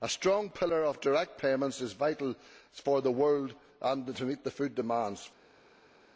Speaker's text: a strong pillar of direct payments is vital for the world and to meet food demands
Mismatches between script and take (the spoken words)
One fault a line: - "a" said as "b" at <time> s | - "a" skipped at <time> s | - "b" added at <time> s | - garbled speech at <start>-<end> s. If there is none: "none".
none